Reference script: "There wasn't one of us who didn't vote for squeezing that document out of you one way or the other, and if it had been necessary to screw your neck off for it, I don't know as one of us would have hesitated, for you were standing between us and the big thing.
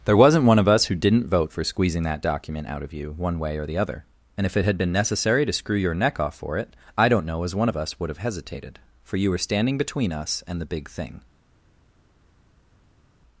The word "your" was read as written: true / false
true